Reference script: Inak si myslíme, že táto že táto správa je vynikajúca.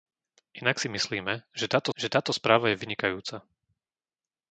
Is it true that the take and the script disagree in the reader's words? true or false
false